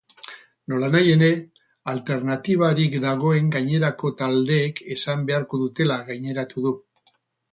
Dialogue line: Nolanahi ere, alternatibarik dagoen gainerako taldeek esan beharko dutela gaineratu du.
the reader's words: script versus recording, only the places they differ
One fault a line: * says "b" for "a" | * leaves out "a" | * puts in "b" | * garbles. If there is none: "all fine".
all fine